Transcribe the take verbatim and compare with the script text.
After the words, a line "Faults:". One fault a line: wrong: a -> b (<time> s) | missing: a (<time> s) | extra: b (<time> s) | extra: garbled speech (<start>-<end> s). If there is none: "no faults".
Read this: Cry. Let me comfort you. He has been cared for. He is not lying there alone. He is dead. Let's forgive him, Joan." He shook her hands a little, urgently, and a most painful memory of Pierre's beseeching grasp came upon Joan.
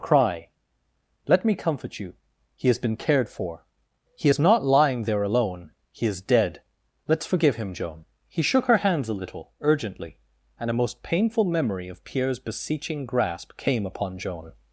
Cry. Let me comfort you. He has been cared for. He is not lying there alone. He is dead. Let's forgive him, Joan." He shook her hands a little, urgently, and a most painful memory of Pierre's beseeching grasp came upon Joan.
Faults:
no faults